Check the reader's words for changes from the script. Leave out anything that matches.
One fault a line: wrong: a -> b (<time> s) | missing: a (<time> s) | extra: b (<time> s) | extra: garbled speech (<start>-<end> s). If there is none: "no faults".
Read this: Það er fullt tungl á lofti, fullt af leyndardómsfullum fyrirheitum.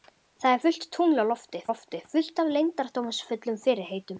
extra: lofti (1.7 s)